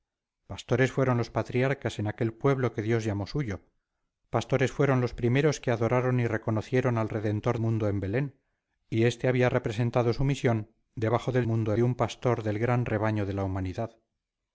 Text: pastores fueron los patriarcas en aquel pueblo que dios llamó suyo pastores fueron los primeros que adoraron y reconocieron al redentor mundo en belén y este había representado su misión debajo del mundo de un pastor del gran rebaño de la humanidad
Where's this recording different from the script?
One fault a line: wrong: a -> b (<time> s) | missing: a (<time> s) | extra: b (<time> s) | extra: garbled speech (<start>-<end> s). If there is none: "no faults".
no faults